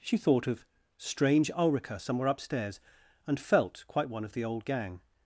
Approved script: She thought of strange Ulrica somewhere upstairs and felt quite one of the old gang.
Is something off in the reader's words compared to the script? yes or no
no